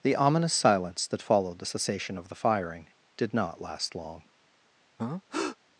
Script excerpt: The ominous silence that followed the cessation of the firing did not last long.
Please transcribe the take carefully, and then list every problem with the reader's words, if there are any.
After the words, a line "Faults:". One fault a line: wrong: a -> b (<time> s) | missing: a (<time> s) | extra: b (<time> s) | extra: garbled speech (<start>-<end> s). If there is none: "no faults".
The ominous silence that followed the cessation of the firing did not last long.
Faults:
no faults